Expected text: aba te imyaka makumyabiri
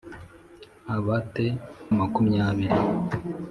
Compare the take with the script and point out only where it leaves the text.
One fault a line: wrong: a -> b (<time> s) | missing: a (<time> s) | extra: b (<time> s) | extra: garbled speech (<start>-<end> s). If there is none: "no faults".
missing: imyaka (1.5 s)